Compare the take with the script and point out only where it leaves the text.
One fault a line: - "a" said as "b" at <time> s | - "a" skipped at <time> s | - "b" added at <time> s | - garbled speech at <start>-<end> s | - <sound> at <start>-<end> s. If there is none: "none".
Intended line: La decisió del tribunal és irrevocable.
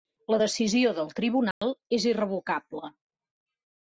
- dropout at 1.5-1.6 s